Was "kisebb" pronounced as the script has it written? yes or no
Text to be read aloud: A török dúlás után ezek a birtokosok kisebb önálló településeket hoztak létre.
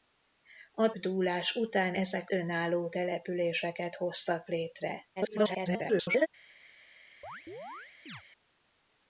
no